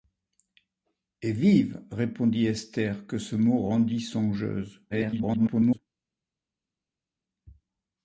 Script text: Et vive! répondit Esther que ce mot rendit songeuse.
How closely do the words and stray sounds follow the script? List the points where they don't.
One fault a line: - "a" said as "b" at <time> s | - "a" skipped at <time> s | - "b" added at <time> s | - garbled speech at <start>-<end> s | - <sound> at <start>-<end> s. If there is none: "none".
- garbled speech at 4.9-5.8 s